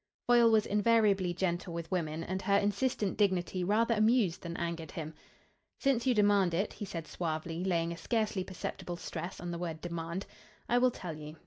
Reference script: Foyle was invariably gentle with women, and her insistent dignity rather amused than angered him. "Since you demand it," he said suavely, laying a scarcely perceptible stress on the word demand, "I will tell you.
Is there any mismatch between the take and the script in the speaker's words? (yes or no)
no